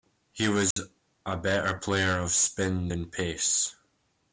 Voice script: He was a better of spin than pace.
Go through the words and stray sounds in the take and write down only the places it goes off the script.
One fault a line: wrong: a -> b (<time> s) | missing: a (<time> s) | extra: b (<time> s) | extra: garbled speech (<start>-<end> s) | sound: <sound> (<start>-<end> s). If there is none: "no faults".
sound: dropout (0.7-0.8 s)
extra: player (1.7 s)